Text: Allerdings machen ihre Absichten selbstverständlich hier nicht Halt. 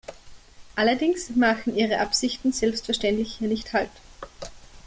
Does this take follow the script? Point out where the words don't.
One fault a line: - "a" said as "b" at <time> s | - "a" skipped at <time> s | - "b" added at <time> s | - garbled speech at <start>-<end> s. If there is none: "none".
none